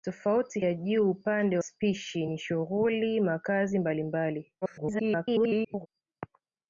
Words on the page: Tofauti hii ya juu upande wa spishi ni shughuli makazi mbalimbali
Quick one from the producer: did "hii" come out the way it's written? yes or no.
no